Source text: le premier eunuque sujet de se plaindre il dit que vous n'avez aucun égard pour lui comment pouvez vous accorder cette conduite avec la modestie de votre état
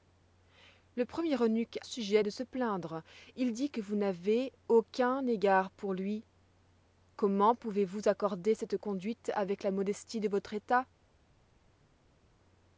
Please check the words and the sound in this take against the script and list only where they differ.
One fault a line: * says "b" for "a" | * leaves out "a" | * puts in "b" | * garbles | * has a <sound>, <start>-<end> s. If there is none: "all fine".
all fine